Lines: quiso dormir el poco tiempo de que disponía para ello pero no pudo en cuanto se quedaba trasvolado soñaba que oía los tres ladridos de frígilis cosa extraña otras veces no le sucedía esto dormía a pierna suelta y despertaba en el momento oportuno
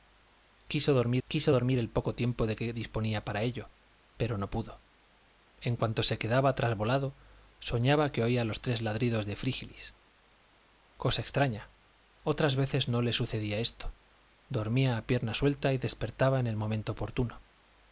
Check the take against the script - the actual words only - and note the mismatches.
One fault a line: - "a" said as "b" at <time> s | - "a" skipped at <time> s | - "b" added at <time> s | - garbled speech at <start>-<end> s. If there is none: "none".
- "quiso dormir" added at 1.3 s